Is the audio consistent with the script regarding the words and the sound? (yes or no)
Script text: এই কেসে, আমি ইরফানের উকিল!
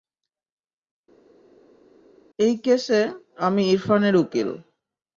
yes